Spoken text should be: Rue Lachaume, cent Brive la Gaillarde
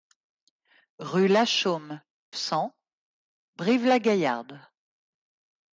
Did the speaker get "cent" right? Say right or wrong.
right